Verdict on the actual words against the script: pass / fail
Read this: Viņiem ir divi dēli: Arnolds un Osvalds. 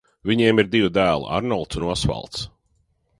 pass